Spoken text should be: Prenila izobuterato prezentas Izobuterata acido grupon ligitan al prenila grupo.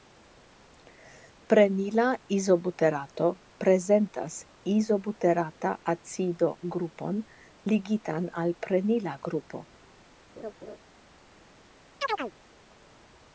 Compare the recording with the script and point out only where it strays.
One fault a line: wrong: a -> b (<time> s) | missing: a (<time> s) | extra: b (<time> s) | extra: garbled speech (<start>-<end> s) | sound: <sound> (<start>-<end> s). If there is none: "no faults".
sound: laugh (10.4-10.8 s)
sound: chirp (12.0-12.3 s)